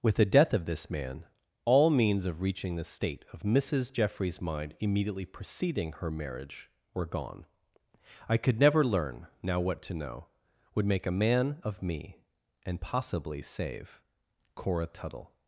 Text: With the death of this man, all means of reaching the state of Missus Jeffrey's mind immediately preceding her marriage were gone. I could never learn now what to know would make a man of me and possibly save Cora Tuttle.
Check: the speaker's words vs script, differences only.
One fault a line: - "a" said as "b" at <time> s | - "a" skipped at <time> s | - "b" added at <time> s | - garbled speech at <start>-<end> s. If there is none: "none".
none